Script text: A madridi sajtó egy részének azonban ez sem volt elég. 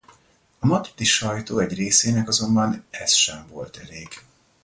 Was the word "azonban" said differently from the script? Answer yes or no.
no